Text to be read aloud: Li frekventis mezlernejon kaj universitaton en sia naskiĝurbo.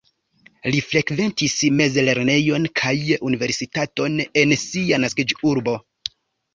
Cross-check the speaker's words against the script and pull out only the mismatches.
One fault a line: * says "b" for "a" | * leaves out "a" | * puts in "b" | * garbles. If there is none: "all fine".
all fine